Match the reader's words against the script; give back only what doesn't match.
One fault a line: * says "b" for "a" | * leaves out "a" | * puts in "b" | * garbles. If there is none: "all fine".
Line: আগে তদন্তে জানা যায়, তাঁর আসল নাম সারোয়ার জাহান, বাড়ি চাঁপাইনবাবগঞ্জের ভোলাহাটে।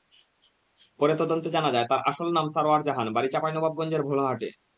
* says "পরে" for "আগে"